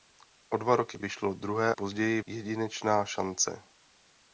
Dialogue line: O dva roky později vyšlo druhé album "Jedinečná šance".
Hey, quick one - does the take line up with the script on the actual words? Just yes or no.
no